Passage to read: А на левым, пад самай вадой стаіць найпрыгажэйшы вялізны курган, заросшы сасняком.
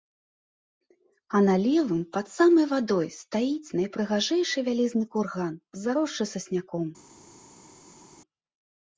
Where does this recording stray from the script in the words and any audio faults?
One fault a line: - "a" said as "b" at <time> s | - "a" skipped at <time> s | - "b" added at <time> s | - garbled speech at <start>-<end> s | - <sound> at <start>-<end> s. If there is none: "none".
none